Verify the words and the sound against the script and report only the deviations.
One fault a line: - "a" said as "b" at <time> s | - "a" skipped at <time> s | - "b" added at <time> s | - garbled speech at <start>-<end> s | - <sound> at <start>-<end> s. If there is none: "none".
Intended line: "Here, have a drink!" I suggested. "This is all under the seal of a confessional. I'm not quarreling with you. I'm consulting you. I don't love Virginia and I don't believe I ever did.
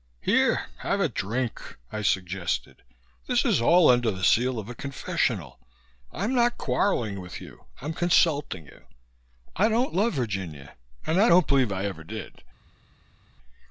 none